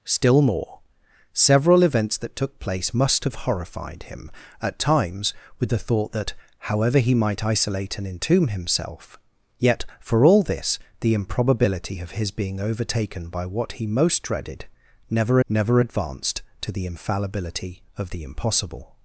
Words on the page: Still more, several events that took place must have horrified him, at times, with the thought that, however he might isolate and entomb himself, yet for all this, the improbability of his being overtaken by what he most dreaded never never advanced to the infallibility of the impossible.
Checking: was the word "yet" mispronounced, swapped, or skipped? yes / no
no